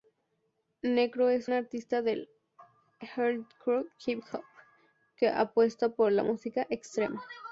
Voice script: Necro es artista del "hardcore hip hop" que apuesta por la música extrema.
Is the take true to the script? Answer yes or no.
yes